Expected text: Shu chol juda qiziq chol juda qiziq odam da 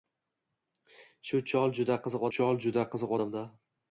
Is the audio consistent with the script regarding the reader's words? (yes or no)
yes